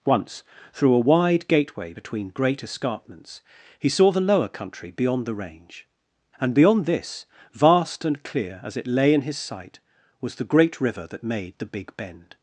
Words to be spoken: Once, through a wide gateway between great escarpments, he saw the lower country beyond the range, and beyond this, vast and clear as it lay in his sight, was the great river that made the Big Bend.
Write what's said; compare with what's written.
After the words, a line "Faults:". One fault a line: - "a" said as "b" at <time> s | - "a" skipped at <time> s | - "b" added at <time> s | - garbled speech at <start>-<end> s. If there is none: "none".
Once, through a wide gateway between great escarpments, he saw the lower country beyond the range, and beyond this, vast and clear as it lay in his sight, was the great river that made the Big Bend.
Faults:
none